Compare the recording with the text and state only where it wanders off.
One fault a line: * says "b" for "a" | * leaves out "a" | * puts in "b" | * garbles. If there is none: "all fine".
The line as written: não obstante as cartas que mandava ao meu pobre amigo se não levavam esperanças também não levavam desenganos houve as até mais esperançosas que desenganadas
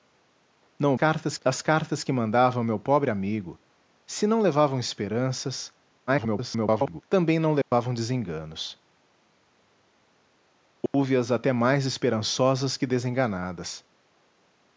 * says "cartas" for "obstante"
* garbles